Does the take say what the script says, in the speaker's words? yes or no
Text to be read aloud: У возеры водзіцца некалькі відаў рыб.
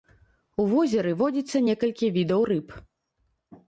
yes